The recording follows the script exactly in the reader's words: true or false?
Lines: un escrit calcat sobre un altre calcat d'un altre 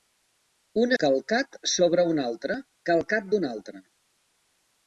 false